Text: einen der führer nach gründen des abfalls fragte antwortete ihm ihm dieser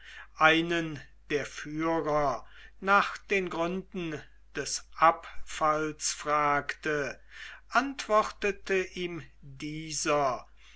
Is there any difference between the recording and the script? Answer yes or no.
yes